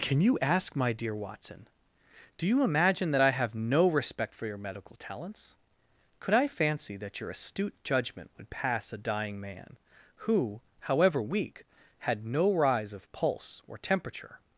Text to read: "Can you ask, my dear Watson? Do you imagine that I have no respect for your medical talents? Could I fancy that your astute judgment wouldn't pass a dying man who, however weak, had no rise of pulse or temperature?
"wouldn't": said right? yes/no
no